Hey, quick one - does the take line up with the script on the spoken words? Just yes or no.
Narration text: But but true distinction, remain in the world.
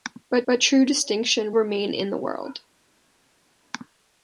yes